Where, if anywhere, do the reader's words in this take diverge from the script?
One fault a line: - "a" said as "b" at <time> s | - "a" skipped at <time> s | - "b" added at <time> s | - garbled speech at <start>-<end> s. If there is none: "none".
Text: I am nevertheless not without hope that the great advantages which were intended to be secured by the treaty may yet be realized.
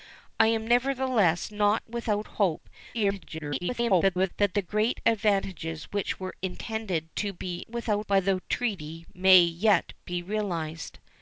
- garbled speech at 2.9-4.3 s
- "secured" said as "without" at 7.7 s